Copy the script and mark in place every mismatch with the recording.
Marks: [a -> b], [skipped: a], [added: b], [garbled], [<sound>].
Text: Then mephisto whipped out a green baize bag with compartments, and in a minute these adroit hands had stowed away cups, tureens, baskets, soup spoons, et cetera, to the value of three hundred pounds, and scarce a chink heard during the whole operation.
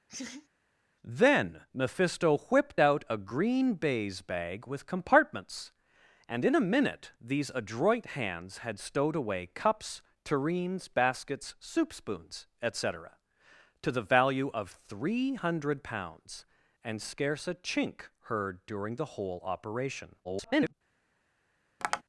[laugh] Then mephisto whipped out a green baize bag with compartments, and in a minute these adroit hands had stowed away cups, tureens, baskets, soup spoons, et cetera, to the value of three hundred pounds, and scarce a chink heard during the whole operation. [garbled] [tap]